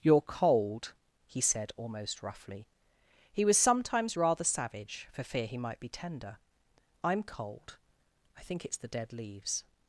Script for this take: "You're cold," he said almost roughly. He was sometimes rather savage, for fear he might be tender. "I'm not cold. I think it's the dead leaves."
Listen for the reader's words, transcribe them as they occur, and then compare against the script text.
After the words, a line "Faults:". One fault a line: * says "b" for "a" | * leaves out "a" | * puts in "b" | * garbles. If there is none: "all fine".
"You're cold," he said almost roughly. He was sometimes rather savage, for fear he might be tender. "I'm cold. I think it's the dead leaves."
Faults:
* leaves out "not"